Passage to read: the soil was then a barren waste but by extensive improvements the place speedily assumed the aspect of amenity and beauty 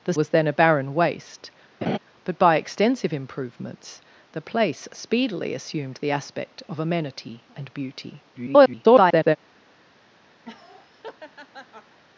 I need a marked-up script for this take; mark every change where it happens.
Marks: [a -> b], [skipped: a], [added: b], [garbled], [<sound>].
the [skipped: soil] was then a barren waste [laugh] but by extensive improvements the place speedily assumed the aspect of amenity and beauty [garbled] [laugh]